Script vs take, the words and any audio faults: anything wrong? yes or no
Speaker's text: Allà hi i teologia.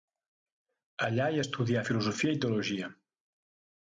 yes